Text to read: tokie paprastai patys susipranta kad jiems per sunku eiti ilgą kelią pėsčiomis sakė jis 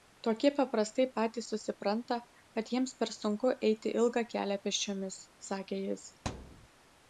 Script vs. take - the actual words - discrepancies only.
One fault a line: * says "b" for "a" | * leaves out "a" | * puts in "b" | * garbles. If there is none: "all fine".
all fine